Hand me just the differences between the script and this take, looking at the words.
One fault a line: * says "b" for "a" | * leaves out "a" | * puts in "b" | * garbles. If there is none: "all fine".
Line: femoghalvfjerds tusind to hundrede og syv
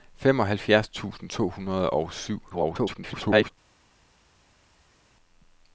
* garbles